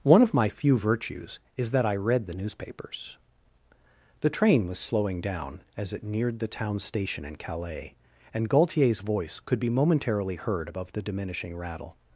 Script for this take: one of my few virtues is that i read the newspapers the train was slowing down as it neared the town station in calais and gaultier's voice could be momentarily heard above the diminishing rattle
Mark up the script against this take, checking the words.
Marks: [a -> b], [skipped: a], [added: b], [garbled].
one of my few virtues is that i read the newspapers the train was slowing down as it neared the town station in calais and gaultier's voice could be momentarily heard above the diminishing rattle